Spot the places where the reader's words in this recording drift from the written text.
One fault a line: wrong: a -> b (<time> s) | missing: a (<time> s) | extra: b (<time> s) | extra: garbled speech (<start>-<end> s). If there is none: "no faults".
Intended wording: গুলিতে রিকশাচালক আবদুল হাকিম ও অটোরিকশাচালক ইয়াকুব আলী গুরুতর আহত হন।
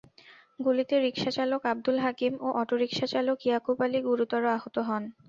no faults